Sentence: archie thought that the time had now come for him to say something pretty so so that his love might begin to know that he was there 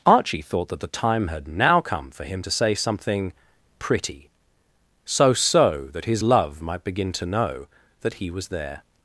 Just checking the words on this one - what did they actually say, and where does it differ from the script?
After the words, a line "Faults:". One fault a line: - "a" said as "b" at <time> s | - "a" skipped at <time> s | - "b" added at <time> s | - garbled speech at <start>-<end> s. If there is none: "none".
archie thought that the time had now come for him to say something pretty so so that his love might begin to know that he was there
Faults:
none